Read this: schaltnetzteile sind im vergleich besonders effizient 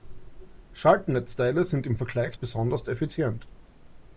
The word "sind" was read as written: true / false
true